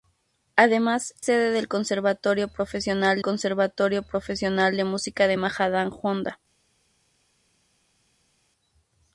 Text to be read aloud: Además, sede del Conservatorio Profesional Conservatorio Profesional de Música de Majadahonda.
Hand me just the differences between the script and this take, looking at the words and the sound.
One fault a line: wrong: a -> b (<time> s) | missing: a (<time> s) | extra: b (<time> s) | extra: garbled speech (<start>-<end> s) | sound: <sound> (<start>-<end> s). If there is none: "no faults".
no faults